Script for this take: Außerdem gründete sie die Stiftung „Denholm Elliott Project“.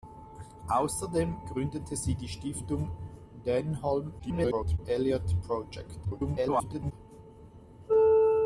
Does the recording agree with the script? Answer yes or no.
no